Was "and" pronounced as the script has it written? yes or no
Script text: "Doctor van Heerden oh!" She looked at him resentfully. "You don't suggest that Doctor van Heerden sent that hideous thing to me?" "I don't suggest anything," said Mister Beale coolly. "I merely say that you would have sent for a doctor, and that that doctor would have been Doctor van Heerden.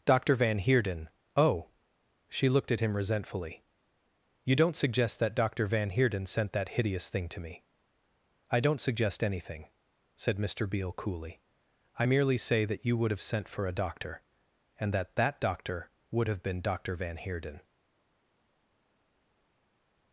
yes